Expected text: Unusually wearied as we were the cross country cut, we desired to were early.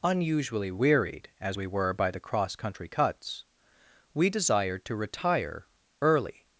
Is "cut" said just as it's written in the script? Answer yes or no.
no